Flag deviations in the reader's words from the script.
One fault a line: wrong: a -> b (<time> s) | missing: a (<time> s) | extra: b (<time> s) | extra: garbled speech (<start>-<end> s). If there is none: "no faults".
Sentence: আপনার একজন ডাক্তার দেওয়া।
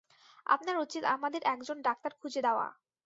extra: উচিত আমাদের (0.8 s)
extra: খুঁজে (2.2 s)